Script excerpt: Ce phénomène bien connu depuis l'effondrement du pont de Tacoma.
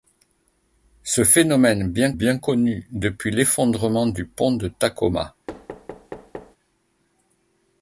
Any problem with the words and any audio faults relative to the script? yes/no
yes